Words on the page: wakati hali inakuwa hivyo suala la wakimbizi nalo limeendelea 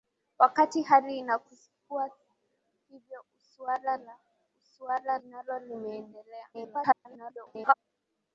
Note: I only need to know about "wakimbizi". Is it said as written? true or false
false